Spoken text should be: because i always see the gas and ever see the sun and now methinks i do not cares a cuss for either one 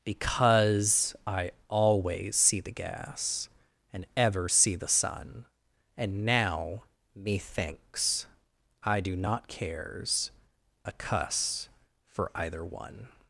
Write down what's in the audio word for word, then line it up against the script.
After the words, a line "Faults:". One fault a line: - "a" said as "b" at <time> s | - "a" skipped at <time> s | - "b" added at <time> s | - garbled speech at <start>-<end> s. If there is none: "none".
because i always see the gas and ever see the sun and now methinks i do not cares a cuss for either one
Faults:
none